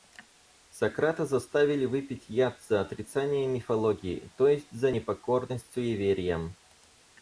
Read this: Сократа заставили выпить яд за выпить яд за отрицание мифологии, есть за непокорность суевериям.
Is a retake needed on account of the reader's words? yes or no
yes